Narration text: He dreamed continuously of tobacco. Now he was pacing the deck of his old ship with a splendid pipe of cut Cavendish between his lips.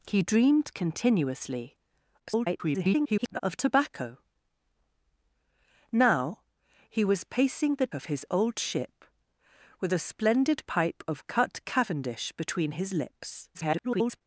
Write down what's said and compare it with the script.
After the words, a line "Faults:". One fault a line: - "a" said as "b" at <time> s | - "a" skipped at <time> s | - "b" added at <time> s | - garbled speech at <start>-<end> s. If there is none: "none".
He dreamed continuously [garbled] of tobacco. Now he was pacing the of his old ship with a splendid pipe of cut Cavendish between his lips. [garbled]
Faults:
- garbled speech at 2.2-3.4 s
- "deck" skipped at 7.9 s
- garbled speech at 13.5-14.2 s